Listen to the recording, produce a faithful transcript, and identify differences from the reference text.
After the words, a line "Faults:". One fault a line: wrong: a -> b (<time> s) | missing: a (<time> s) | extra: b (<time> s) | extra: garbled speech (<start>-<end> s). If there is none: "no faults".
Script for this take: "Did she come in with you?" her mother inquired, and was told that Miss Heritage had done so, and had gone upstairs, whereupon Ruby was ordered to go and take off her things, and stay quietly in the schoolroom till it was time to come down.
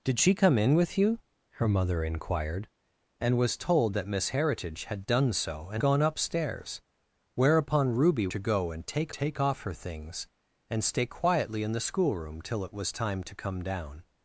"Did she come in with you?" her mother inquired, and was told that Miss Heritage had done so, and gone upstairs, whereupon Ruby to go and take take off her things, and stay quietly in the schoolroom till it was time to come down.
Faults:
missing: had (5.8 s)
missing: was ordered (8.3 s)
extra: take (9.1 s)